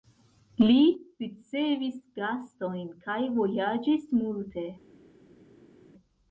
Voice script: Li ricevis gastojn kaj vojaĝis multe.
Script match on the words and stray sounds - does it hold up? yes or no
yes